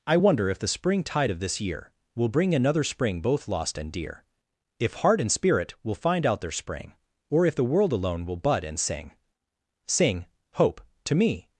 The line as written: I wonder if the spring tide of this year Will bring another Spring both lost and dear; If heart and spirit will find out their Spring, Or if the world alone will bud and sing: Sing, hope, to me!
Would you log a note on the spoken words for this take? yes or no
no